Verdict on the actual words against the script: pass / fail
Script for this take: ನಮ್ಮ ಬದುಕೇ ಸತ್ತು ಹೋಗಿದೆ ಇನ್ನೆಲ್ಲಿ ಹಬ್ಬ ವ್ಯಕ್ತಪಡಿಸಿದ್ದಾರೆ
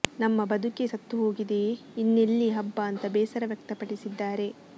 fail